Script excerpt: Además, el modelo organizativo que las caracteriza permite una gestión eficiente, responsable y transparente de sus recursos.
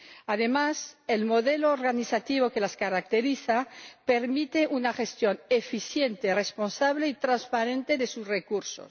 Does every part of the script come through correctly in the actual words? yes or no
yes